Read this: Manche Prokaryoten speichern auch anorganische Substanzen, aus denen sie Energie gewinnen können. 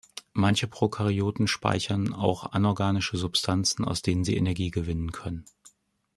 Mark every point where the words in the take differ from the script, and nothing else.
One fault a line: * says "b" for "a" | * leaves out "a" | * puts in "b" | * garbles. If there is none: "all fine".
all fine